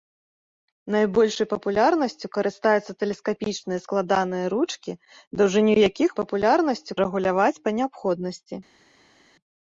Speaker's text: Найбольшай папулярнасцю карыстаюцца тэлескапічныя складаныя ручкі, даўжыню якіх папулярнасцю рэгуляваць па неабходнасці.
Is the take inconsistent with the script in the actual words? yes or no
no